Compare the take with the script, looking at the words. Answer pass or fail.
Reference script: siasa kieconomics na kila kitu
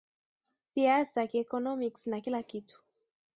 pass